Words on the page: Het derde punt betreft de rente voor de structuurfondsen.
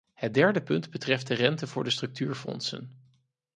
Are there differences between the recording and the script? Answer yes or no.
no